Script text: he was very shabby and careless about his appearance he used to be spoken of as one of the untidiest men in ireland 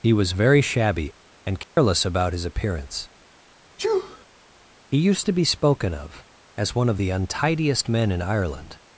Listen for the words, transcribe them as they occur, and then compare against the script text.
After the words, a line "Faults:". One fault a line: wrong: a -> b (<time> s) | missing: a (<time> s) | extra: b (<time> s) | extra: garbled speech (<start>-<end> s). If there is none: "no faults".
he was very shabby and careless about his appearance he used to be spoken of as one of the untidiest men in ireland
Faults:
no faults